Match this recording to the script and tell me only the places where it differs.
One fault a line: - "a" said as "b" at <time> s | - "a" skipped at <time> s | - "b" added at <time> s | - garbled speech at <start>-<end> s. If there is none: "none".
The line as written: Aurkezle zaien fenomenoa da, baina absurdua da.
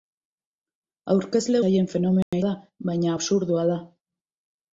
none